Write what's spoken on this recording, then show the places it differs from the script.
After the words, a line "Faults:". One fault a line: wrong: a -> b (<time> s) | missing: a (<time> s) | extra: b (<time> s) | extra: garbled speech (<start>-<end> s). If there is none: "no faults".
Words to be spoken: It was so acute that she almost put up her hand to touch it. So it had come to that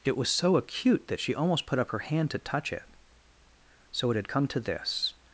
It was so acute that she almost put up her hand to touch it. So it had come to this
Faults:
wrong: that -> this (4.6 s)